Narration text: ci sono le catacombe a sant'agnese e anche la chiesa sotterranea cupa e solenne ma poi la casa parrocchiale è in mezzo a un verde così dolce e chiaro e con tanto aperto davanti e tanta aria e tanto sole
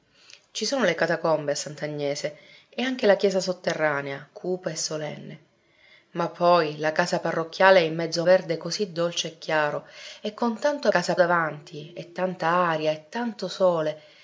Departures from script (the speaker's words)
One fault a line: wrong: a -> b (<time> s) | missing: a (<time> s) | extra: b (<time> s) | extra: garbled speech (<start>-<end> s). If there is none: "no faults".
missing: un (8.3 s)
wrong: aperto -> casa (10.9 s)